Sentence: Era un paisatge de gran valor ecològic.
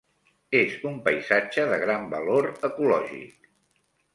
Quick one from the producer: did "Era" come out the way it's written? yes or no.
no